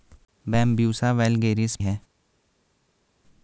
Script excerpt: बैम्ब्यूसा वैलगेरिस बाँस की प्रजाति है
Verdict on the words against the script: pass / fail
fail